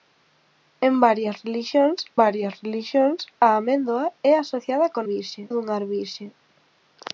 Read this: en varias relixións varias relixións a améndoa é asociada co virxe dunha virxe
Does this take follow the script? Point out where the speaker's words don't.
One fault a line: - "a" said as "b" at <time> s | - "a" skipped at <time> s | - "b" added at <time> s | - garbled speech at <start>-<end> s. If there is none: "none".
none